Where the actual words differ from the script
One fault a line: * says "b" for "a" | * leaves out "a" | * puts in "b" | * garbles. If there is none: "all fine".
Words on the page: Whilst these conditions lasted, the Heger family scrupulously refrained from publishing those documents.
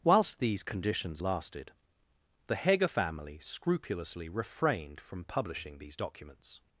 * says "these" for "those"